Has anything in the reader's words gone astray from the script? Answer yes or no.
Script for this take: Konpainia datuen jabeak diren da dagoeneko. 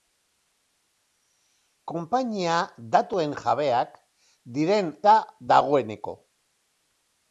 no